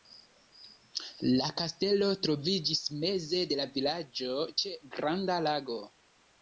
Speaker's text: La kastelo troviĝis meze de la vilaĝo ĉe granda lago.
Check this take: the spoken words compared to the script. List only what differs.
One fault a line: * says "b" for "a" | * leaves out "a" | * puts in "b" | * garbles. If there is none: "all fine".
all fine